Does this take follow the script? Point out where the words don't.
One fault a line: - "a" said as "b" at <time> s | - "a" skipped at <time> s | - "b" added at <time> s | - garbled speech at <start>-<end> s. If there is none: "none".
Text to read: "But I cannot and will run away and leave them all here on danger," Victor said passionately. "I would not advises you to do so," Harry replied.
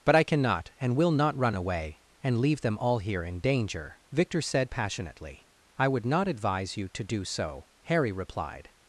- "not" added at 1.1 s
- "on" said as "in" at 3.2 s
- "advises" said as "advise" at 6.3 s